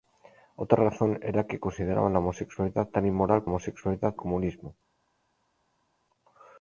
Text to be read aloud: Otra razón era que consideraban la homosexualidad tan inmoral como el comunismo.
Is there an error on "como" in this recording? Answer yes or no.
yes